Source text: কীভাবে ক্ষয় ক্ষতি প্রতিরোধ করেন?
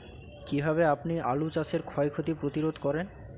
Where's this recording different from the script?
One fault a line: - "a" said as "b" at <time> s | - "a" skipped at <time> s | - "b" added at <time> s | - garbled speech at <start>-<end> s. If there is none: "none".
- "আপনি আলু চাষের" added at 0.9 s